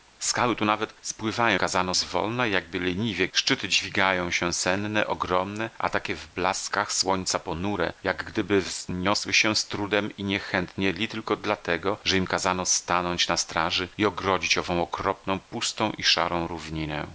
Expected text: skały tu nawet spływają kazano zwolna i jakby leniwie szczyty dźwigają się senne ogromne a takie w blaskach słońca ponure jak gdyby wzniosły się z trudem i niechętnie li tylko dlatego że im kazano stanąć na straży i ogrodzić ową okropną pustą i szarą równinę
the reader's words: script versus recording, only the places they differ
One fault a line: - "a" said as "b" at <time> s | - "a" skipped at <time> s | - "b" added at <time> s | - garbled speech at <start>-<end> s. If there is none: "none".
none